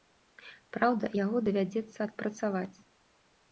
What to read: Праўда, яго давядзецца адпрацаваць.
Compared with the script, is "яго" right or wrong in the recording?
right